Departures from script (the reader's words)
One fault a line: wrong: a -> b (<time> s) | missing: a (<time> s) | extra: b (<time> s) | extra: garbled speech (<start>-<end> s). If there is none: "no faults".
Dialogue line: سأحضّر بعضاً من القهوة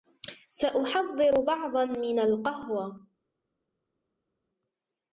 no faults